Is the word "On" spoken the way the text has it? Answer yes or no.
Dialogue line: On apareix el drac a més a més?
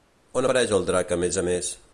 yes